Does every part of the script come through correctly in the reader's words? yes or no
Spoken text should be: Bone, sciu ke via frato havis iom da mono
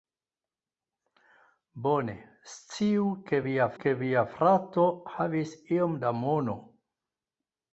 no